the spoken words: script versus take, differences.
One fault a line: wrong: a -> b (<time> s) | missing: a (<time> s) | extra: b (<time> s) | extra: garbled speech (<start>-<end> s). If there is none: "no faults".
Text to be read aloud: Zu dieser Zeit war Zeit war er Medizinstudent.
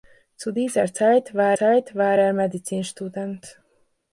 no faults